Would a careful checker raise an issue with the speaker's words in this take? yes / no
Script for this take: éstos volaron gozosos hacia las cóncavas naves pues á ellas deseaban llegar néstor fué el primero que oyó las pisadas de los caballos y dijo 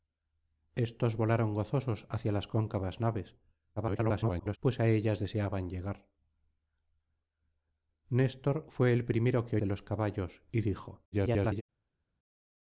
yes